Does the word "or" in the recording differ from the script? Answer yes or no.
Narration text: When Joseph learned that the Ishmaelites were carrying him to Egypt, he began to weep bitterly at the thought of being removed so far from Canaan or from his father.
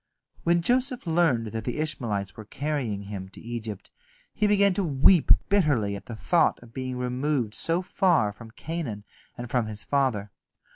yes